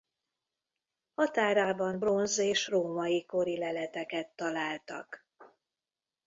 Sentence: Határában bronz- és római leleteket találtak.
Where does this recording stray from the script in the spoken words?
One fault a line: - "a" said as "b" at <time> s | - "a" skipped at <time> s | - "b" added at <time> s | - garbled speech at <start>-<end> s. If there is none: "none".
- "kori" added at 3.2 s